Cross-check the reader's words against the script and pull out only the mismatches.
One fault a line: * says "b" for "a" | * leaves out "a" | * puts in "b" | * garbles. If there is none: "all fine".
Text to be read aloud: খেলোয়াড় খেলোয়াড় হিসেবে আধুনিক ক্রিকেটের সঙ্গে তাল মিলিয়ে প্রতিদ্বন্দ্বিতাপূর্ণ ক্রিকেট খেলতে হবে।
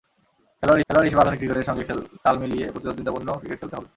all fine